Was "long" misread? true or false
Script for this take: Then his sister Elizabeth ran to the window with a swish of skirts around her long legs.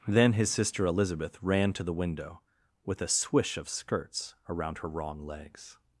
true